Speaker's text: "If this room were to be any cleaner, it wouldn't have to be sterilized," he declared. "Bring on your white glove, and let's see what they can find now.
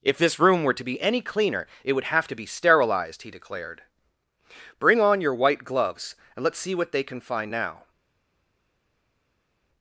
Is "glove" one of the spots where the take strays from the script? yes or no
yes